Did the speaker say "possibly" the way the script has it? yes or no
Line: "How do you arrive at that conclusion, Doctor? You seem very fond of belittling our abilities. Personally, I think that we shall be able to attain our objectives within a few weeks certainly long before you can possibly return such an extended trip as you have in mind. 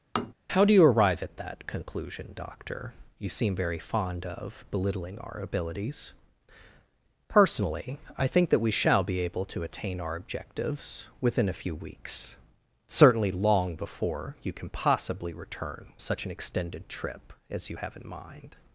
yes